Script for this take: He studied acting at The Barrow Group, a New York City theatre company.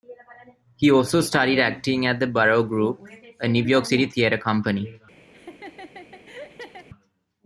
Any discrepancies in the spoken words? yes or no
yes